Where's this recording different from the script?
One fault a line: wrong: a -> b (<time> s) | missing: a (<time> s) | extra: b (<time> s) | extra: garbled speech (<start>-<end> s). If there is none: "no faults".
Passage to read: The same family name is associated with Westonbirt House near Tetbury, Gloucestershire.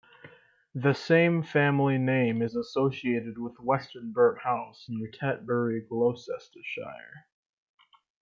no faults